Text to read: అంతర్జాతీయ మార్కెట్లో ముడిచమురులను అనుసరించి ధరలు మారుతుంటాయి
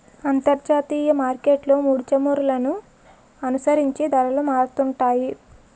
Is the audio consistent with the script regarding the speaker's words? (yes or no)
yes